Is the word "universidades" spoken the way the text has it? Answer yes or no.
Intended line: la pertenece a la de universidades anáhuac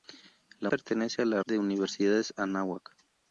yes